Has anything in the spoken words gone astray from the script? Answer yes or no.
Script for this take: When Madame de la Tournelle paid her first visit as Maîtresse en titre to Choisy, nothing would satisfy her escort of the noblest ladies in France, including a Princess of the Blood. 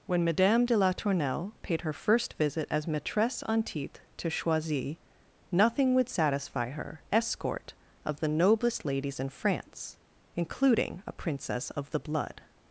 no